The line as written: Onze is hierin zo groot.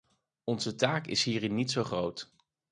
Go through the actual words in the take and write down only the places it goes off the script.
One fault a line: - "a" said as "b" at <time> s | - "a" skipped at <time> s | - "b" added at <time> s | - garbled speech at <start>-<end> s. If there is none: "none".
- "taak" added at 0.8 s
- "niet" added at 1.6 s